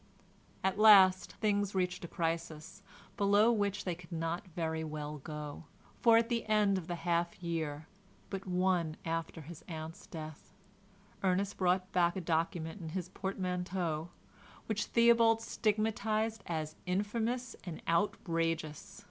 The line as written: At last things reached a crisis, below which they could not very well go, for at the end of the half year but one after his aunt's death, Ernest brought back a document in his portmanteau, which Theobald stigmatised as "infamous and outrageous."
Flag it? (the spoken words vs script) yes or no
no